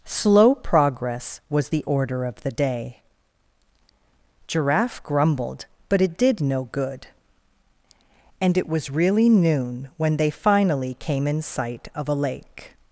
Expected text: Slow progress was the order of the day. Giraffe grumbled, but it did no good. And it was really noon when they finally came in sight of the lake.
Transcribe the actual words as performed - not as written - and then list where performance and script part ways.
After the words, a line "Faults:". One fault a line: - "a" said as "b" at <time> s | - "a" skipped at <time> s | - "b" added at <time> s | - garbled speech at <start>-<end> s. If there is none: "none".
Slow progress was the order of the day. Giraffe grumbled, but it did no good. And it was really noon when they finally came in sight of a lake.
Faults:
- "the" said as "a" at 12.1 s